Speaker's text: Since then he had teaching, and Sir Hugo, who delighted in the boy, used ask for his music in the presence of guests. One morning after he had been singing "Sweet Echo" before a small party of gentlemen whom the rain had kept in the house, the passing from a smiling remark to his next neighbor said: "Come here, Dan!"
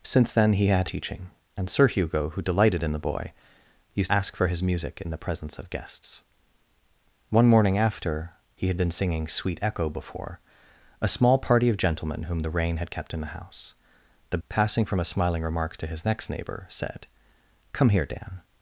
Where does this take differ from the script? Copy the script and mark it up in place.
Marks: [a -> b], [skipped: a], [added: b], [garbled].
Since then he had teaching, and Sir Hugo, who delighted in the boy, used ask for his music in the presence of guests. One morning after he had been singing "Sweet Echo" before a small party of gentlemen whom the rain had kept in the house, the passing from a smiling remark to his next neighbor said: "Come here, Dan!"